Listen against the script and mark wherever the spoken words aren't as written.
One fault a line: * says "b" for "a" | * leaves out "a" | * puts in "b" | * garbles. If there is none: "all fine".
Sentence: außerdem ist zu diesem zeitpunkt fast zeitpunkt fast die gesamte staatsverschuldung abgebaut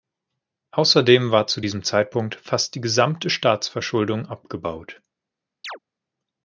* says "war" for "ist"
* leaves out "zeitpunkt fast"